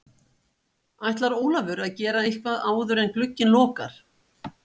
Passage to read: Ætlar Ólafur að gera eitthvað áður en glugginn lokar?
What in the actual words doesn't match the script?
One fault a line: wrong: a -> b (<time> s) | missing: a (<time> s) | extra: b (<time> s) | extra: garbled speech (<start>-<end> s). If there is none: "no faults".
no faults